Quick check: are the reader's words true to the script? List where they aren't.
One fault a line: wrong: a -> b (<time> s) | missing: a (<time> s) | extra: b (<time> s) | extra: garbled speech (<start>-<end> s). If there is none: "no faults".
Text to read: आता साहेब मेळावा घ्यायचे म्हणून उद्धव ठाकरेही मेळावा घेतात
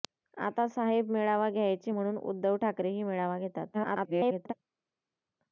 extra: garbled speech (3.7-4.5 s)